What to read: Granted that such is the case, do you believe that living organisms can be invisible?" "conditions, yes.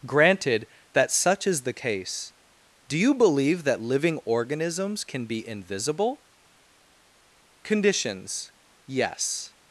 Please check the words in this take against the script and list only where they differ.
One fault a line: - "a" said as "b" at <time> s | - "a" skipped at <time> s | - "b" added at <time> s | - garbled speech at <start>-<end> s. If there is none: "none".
none